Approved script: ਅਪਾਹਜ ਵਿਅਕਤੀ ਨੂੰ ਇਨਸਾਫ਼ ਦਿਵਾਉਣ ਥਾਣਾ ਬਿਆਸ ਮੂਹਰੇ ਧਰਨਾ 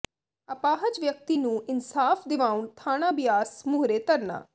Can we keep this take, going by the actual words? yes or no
yes